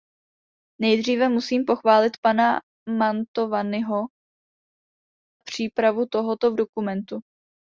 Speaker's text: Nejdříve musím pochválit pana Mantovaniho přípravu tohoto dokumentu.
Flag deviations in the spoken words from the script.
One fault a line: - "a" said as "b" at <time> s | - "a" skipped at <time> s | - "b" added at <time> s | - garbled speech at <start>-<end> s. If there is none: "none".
none